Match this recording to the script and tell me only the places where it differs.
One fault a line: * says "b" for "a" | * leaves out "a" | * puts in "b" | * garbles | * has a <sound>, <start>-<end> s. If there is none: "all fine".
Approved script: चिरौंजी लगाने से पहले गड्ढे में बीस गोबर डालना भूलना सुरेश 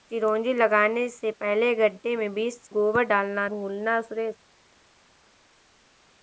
all fine